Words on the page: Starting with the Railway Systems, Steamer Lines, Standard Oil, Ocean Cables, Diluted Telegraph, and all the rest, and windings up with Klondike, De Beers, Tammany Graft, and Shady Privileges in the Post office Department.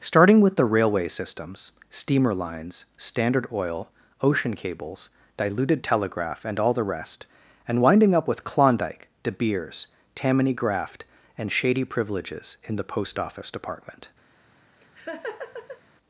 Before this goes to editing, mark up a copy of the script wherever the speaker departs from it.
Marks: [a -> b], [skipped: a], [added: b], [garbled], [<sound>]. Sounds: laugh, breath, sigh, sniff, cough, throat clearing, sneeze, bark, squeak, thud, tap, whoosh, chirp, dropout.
Starting with the Railway Systems, Steamer Lines, Standard Oil, Ocean Cables, Diluted Telegraph, and all the rest, and [windings -> winding] up with Klondike, De Beers, Tammany Graft, and Shady Privileges in the Post office Department. [laugh]